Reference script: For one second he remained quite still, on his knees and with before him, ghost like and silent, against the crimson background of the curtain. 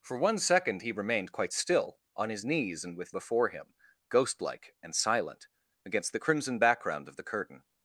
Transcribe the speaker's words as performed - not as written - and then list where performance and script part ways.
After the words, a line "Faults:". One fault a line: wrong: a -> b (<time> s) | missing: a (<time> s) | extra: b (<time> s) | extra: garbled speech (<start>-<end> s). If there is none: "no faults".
For one second he remained quite still, on his knees and with before him, ghost like and silent, against the crimson background of the curtain.
Faults:
no faults